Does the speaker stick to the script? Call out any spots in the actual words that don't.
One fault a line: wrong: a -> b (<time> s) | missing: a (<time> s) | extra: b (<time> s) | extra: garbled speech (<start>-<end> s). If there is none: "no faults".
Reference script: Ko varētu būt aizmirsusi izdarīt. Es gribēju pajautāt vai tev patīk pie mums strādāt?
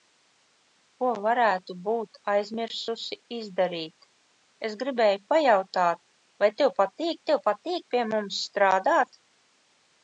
extra: tev patīk (7.3 s)